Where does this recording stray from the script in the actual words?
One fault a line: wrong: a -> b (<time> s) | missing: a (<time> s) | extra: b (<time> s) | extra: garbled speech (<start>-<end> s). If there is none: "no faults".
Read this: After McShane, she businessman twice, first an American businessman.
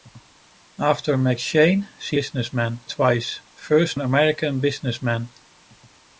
no faults